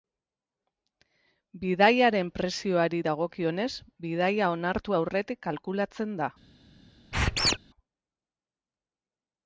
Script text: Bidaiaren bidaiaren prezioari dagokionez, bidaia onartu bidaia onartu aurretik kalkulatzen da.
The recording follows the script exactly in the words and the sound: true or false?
false